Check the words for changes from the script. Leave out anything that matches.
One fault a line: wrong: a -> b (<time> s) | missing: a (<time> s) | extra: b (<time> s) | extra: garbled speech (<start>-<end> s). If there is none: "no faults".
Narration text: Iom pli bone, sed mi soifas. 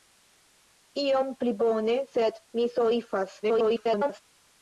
extra: garbled speech (3.4-4.2 s)